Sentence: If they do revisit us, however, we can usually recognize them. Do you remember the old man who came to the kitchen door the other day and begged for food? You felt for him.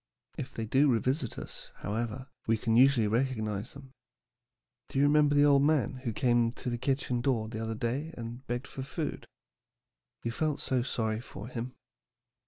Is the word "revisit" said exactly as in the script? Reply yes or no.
yes